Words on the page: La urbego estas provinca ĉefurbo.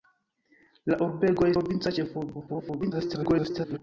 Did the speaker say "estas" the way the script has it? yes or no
no